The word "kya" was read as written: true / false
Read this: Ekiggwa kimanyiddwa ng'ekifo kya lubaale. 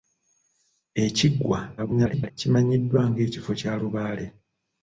true